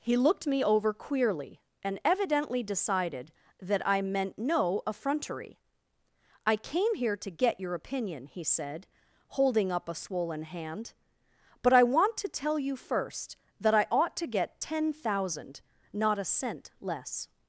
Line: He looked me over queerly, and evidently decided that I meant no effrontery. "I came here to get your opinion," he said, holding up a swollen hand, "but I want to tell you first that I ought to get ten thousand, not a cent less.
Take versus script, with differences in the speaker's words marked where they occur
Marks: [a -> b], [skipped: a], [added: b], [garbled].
He looked me over queerly, and evidently decided that I meant no effrontery. "I came here to get your opinion," he said, holding up a swollen hand, "but I want to tell you first that I ought to get ten thousand, not a cent less.